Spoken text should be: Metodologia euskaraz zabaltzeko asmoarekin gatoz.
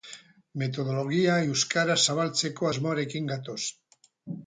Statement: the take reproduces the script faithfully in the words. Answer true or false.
true